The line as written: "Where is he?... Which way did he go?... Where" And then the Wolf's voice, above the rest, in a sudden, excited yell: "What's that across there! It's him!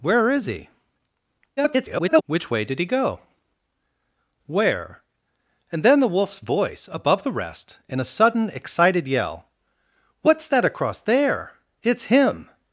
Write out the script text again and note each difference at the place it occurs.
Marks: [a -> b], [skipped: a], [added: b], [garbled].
"Where is he?... [garbled] Which way did he go?... Where" And then the Wolf's voice, above the rest, in a sudden, excited yell: "What's that across there! It's him!